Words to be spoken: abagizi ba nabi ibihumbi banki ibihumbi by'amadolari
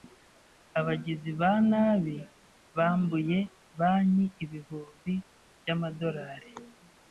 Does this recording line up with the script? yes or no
no